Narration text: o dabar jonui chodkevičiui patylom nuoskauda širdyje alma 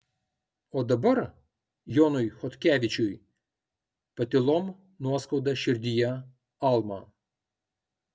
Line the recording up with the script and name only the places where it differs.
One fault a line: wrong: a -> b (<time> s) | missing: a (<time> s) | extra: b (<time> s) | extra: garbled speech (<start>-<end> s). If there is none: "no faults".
no faults